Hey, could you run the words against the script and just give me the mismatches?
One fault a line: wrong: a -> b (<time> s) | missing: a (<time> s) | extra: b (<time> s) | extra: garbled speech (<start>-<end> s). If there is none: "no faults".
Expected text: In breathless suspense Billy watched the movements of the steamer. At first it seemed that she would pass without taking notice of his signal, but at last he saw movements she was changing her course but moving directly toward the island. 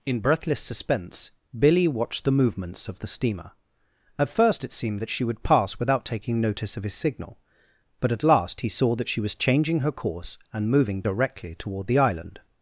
wrong: movements -> that (8.9 s)
wrong: but -> and (10.5 s)